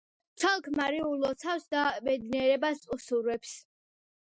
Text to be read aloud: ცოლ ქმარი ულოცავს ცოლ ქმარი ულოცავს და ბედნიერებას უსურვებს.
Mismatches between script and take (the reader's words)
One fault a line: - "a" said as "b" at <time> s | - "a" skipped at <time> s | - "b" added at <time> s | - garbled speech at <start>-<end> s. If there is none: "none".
- "ცოლ ქმარი ულოცავს" skipped at 1.7 s